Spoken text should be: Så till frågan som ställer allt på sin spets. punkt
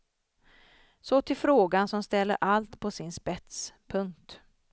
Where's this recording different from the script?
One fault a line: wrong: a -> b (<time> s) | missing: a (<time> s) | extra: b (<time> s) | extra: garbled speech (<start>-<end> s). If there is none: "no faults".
no faults